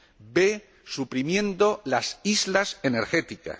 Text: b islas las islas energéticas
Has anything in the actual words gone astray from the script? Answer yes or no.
yes